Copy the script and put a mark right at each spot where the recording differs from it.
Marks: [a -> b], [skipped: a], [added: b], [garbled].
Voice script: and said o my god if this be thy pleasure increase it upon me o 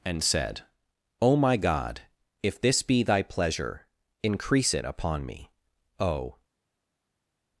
and said o my god if this be thy pleasure increase it upon me o